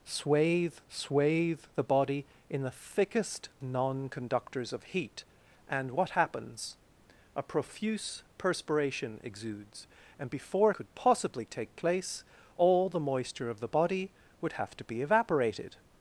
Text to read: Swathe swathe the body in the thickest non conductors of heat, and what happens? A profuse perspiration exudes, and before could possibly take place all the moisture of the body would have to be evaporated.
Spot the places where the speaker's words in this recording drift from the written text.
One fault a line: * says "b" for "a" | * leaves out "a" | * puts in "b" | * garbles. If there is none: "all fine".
all fine